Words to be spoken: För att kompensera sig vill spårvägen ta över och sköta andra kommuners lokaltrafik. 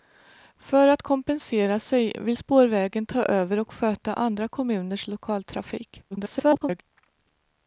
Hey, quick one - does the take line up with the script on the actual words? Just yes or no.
no